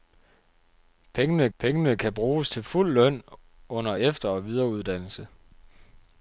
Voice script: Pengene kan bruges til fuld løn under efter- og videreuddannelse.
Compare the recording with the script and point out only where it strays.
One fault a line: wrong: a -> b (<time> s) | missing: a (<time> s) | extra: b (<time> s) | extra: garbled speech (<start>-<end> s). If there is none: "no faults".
extra: pengene (1.6 s)